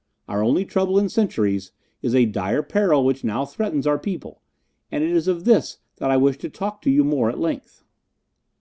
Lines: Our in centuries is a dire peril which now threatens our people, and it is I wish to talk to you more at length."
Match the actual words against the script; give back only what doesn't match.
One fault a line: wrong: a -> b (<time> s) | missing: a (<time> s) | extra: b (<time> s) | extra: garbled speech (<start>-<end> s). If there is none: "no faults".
extra: only trouble (0.4 s)
extra: of this that (5.3 s)